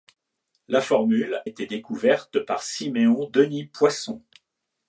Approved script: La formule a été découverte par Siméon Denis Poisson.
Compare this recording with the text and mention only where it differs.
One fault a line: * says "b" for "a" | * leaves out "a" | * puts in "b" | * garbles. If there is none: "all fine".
* leaves out "a"